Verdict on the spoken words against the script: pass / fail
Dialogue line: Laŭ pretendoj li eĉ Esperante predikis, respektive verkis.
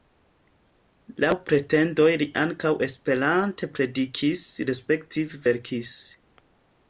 fail